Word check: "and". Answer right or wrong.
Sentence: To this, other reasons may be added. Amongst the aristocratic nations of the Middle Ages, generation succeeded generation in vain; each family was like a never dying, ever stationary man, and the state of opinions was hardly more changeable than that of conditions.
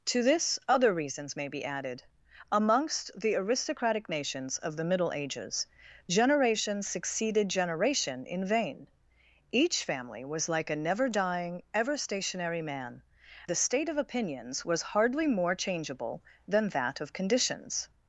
wrong